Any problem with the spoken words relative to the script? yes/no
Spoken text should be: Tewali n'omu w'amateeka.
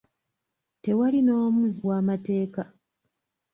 no